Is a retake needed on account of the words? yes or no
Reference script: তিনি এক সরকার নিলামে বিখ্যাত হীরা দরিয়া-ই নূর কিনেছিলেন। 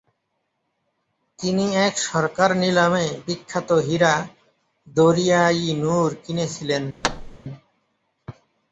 no